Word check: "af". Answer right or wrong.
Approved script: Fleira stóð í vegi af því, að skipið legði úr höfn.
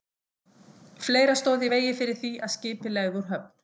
wrong